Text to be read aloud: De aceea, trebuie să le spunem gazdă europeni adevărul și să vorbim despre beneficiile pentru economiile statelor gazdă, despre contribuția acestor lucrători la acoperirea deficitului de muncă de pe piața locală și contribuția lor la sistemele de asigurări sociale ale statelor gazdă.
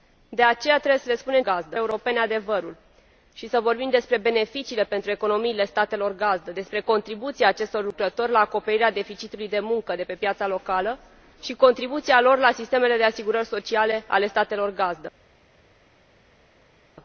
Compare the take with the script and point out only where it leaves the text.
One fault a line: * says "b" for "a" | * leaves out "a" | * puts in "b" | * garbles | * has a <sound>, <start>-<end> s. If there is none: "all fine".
all fine